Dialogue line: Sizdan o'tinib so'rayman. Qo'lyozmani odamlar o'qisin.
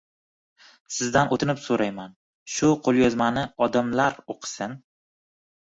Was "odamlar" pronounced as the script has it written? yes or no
yes